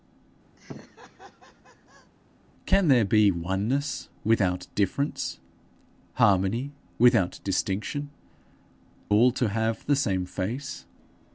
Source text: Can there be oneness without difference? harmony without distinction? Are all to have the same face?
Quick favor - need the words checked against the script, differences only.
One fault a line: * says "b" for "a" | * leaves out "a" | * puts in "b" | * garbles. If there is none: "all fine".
* leaves out "Are"